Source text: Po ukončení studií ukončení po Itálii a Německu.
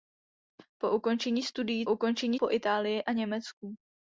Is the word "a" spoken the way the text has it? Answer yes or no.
yes